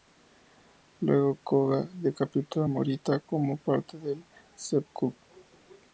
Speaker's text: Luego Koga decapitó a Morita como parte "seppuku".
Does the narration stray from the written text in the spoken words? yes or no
yes